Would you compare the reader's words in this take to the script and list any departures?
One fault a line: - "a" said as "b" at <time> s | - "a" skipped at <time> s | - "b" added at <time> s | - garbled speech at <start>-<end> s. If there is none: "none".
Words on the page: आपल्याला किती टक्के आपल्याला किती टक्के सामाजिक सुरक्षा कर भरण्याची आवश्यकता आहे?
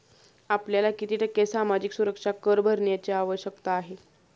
- "आपल्याला किती टक्के" skipped at 1.4 s